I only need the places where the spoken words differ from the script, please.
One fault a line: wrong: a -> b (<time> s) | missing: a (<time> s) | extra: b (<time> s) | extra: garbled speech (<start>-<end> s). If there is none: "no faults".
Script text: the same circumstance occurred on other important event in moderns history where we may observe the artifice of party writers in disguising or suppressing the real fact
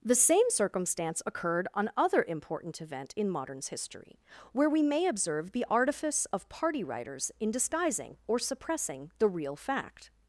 no faults